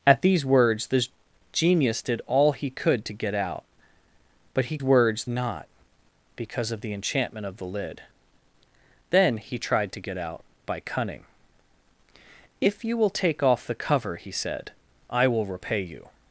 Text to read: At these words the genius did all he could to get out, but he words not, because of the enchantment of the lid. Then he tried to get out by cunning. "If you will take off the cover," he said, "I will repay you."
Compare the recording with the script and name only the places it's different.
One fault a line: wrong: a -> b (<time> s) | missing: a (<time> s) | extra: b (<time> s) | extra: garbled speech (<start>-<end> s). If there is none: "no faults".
no faults